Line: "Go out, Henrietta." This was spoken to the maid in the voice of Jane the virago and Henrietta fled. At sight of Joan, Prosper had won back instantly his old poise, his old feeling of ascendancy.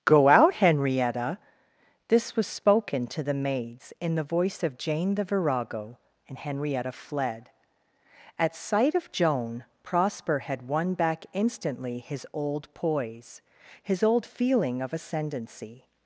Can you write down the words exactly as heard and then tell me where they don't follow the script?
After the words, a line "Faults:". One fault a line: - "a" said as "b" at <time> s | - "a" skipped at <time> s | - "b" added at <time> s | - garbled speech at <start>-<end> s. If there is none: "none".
"Go out, Henrietta." This was spoken to the maids in the voice of Jane the virago and Henrietta fled. At sight of Joan, Prosper had won back instantly his old poise, his old feeling of ascendancy.
Faults:
- "maid" said as "maids" at 3.3 s